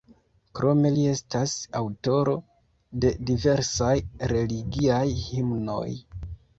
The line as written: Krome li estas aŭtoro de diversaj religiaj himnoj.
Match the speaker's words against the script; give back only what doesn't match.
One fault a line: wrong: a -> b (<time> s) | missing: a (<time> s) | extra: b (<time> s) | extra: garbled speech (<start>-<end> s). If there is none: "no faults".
no faults